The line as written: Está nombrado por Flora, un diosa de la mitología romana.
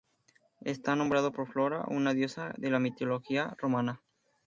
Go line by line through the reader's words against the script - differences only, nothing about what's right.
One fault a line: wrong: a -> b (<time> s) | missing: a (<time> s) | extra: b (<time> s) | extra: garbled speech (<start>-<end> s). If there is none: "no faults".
wrong: un -> una (1.9 s)